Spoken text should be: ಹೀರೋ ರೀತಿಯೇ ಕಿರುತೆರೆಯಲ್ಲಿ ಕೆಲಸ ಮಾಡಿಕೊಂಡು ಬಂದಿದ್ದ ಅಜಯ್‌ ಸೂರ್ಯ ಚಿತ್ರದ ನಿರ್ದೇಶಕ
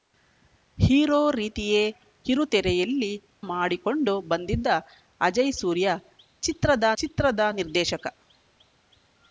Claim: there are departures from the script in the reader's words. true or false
true